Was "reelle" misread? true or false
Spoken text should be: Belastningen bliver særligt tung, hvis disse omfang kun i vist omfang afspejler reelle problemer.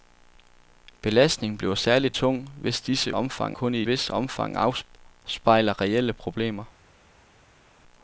false